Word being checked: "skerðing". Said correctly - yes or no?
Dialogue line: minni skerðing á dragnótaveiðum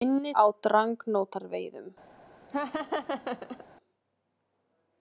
no